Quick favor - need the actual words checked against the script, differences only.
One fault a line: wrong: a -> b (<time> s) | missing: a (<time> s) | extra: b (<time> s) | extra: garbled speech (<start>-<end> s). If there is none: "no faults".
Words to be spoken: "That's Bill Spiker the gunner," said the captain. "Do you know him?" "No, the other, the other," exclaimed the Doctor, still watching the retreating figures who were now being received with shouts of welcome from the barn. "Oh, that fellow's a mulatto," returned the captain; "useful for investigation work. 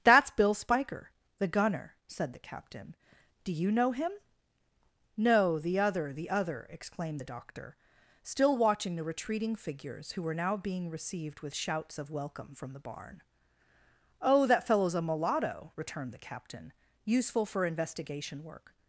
no faults